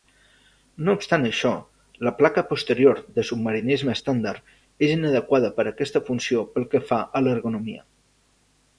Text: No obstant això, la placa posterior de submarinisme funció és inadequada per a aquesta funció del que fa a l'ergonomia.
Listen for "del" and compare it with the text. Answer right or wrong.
wrong